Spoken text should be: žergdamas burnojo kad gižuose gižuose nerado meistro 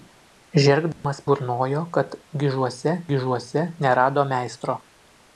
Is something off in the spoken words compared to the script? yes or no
no